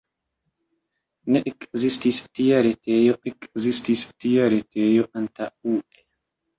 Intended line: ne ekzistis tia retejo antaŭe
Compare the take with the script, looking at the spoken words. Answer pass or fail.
fail